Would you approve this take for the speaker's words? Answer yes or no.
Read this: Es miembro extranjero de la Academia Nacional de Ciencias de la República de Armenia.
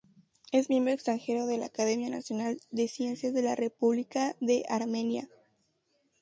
yes